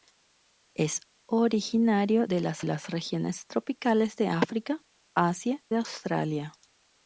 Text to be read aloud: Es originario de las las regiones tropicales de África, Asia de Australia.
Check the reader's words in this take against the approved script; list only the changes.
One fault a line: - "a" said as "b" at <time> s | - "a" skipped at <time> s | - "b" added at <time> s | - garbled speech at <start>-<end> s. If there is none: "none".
none